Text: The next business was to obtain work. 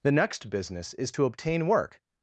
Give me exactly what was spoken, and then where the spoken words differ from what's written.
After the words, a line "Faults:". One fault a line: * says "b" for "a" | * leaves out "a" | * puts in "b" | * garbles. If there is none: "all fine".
The next business is to obtain work.
Faults:
* says "is" for "was"